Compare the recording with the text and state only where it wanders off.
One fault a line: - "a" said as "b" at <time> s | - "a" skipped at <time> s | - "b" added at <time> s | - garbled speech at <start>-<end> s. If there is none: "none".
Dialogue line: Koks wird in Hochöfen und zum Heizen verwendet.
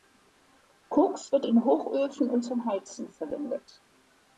none